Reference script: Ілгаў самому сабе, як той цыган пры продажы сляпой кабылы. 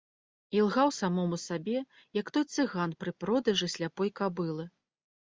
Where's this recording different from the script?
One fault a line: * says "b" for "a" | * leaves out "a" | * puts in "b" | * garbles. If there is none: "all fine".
all fine